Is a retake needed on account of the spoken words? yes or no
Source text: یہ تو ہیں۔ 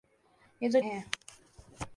no